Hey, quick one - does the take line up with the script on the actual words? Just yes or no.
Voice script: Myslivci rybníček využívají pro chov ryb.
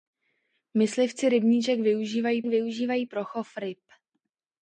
no